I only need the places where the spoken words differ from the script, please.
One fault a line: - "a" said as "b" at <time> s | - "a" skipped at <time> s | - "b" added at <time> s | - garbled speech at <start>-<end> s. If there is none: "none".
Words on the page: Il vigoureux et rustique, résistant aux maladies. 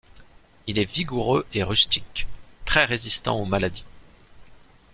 - "est" added at 0.8 s
- "très" added at 2.6 s